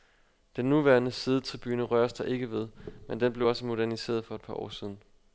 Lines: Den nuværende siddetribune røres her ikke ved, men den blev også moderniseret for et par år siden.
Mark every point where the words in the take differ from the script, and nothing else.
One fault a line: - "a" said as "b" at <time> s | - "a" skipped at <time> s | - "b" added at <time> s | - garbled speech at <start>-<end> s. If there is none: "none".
- "her" said as "der" at 2.1 s